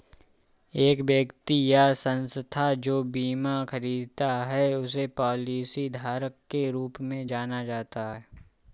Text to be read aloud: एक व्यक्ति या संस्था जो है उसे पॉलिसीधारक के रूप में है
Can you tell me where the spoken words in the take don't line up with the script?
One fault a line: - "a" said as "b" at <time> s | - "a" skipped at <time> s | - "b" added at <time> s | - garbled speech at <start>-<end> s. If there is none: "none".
- "बीमा खरीदता" added at 3.0 s
- "जाना जाता" added at 7.3 s